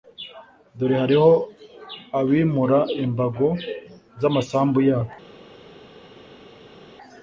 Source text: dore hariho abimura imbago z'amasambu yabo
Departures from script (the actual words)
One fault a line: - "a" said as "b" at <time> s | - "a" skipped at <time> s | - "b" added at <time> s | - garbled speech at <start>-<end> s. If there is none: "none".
none